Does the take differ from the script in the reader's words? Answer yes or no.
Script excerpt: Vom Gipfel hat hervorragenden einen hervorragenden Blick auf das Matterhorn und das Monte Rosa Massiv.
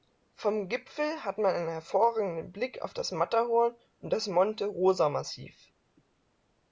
yes